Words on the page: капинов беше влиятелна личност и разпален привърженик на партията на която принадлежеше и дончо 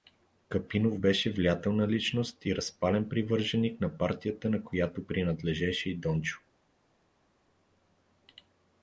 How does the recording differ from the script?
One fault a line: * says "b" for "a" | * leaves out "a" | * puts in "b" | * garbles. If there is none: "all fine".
all fine